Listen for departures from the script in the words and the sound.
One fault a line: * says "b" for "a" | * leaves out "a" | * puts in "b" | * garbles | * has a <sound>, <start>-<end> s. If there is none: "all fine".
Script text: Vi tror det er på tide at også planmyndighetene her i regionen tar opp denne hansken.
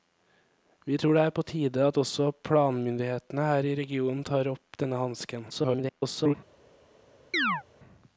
* garbles
* has a chirp, 7.3-7.6 s